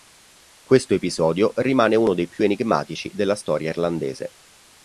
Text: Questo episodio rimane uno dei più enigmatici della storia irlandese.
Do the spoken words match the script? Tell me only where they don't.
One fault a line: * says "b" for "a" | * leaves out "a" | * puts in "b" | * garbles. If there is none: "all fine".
all fine